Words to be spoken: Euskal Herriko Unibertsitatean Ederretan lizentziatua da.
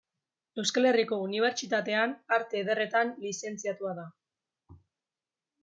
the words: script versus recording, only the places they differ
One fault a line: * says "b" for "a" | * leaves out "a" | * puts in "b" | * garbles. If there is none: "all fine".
* puts in "Arte"